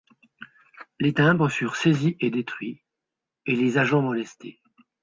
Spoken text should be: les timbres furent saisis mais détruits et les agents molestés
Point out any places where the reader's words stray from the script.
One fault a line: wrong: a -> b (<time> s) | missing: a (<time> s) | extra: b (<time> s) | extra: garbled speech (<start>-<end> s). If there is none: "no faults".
wrong: mais -> et (2.2 s)